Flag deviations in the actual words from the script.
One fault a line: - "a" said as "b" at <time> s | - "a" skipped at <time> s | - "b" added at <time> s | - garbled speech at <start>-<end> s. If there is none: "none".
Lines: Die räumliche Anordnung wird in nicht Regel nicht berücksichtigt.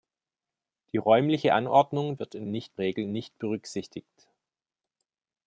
none